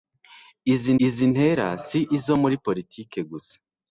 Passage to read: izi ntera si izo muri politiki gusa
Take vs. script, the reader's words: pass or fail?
fail